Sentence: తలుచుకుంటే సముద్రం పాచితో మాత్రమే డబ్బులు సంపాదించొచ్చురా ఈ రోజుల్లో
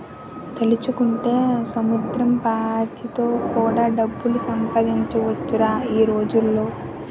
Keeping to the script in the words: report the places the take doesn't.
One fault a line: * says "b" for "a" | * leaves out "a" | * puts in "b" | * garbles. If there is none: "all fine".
* says "కూడా" for "మాత్రమే"